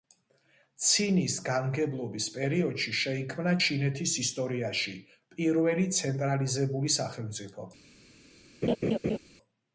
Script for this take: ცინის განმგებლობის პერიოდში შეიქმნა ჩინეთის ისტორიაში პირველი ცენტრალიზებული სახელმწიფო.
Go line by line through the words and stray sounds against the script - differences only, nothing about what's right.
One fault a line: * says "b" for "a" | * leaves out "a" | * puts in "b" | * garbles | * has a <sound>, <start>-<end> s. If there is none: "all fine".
* has a laugh, 8.6-9.2 s